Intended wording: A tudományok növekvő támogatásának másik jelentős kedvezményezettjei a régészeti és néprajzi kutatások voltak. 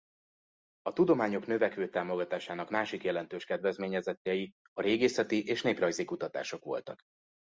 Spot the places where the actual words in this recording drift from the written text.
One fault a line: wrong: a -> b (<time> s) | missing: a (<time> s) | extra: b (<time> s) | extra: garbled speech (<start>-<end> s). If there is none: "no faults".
no faults